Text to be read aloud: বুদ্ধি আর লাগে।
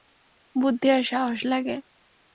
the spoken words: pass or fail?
fail